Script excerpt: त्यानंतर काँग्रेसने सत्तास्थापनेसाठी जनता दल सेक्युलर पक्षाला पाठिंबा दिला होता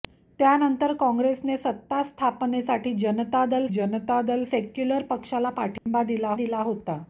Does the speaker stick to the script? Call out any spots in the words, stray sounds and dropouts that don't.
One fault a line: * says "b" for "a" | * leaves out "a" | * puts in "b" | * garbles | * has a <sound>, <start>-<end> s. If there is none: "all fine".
* puts in "जनता दल"
* has a dropout, 5.8-5.9 s
* puts in "दिला"